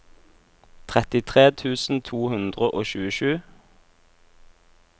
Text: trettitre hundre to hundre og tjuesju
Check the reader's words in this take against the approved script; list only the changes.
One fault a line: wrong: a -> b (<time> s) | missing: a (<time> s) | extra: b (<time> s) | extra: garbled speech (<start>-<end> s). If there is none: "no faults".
wrong: hundre -> tusen (1.5 s)